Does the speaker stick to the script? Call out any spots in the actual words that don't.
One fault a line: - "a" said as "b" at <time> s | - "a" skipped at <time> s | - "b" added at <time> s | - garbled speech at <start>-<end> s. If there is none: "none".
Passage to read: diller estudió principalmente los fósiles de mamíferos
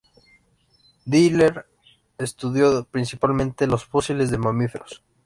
none